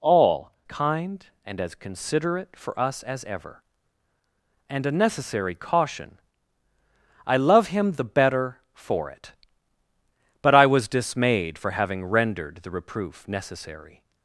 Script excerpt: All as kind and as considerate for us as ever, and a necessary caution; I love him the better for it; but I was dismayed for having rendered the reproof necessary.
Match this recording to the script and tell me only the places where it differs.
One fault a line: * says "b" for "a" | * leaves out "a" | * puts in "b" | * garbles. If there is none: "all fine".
* leaves out "as"